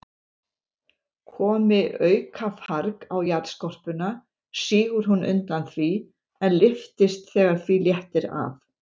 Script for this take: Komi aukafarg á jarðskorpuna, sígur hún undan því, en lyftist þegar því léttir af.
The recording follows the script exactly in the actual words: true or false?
true